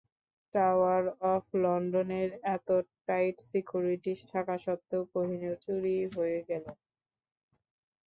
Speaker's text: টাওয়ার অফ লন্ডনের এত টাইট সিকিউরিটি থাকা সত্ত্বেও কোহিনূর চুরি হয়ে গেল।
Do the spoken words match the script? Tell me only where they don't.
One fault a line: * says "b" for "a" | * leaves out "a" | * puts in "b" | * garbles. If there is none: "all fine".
all fine